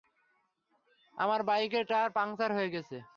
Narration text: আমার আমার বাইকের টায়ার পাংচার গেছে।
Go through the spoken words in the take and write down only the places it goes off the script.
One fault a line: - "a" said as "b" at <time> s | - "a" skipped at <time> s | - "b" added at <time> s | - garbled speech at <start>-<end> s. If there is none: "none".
- "আমার" skipped at 1.4 s
- "হয়ে" added at 2.5 s